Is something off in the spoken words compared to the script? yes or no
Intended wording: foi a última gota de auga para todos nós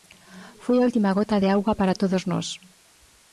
no